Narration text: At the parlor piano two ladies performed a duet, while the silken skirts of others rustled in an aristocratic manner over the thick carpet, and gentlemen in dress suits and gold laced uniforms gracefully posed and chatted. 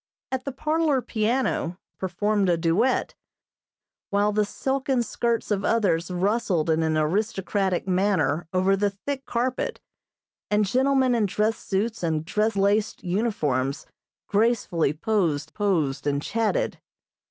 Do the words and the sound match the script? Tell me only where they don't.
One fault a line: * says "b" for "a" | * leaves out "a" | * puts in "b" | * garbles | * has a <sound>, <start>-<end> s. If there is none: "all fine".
* leaves out "two ladies"
* says "dress" for "gold"
* puts in "posed"